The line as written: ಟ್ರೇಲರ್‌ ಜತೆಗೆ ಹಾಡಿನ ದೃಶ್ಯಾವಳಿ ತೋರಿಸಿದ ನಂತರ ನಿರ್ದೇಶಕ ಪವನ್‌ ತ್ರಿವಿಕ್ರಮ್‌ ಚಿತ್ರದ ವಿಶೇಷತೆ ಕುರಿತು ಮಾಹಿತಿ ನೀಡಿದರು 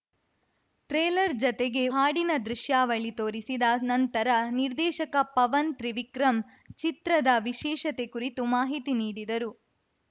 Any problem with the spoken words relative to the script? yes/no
no